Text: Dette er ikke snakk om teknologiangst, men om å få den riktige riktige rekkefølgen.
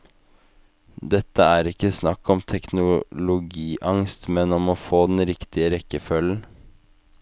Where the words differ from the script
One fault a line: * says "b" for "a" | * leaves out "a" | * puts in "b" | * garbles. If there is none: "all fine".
* leaves out "riktige"